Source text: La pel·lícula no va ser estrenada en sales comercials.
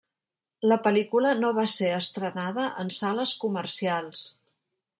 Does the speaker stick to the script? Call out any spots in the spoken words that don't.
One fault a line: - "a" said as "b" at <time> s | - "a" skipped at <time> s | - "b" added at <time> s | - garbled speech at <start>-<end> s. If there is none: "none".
none